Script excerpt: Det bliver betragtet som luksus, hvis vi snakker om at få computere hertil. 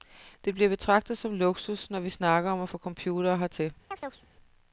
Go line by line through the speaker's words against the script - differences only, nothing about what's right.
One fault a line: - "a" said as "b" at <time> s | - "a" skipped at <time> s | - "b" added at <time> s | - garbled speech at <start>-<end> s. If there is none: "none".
- "hvis" said as "når" at 1.9 s